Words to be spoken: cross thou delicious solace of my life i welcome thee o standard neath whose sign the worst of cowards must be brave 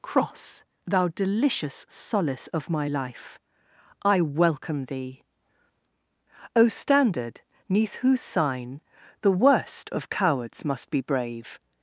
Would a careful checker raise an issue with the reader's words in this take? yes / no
no